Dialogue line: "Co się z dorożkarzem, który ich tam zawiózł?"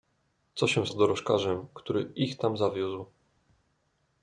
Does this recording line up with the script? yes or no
yes